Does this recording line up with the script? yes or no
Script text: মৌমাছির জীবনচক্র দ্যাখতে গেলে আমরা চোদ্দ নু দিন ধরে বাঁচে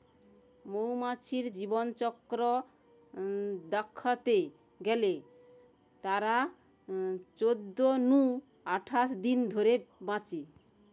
no